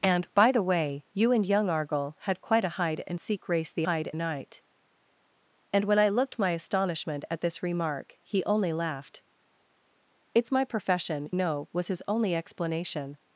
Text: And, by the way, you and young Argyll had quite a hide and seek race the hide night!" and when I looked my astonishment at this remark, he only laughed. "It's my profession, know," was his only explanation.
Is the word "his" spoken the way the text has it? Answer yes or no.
yes